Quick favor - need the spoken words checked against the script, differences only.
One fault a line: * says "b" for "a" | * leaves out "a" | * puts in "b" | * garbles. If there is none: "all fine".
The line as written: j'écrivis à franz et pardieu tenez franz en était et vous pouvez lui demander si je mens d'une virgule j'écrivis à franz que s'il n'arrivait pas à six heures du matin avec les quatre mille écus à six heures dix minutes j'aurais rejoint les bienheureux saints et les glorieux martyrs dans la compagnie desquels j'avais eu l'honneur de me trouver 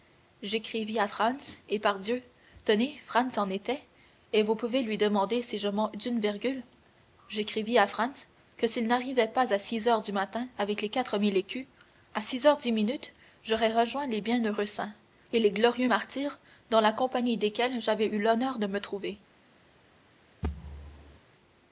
all fine